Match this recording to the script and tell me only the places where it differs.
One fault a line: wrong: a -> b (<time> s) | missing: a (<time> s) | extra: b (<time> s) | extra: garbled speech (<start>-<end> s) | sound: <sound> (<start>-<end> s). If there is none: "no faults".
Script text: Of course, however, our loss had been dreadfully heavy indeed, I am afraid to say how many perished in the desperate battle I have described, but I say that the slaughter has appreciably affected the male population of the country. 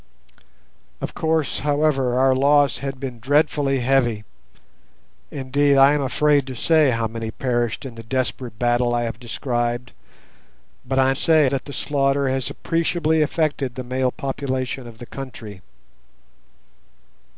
no faults